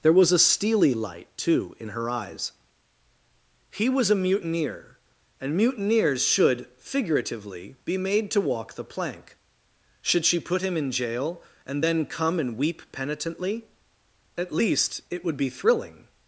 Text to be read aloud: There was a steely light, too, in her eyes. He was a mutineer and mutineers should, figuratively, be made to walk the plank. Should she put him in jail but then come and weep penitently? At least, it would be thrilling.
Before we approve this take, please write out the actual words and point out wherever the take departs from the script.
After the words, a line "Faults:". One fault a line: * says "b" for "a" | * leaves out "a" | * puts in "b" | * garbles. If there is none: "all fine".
There was a steely light, too, in her eyes. He was a mutineer and mutineers should, figuratively, be made to walk the plank. Should she put him in jail and then come and weep penitently? At least, it would be thrilling.
Faults:
* says "and" for "but"